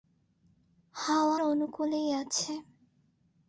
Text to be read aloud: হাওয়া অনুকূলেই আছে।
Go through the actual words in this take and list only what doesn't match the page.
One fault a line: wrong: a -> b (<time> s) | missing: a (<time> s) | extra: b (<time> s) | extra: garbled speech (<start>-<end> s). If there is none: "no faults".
no faults